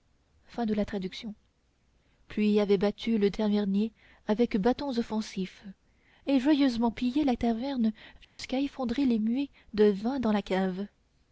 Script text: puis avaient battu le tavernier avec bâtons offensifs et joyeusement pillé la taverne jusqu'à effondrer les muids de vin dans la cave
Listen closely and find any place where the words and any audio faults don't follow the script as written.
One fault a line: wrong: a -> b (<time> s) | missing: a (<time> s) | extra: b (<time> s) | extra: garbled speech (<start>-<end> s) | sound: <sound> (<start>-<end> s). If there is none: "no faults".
sound: dropout (8.2-8.4 s)